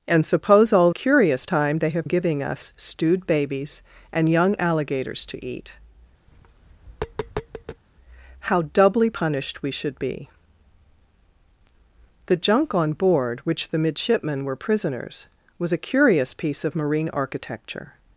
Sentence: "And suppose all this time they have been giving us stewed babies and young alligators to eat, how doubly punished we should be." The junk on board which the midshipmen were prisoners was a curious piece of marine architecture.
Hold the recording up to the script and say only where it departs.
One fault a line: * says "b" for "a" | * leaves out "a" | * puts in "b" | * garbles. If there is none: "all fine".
* says "curious" for "this"
* leaves out "been"